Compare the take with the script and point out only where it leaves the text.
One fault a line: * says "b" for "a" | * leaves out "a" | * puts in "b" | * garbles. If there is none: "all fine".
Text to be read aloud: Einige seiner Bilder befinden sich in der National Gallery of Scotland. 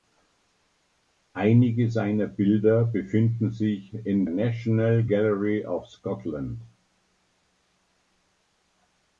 * leaves out "der"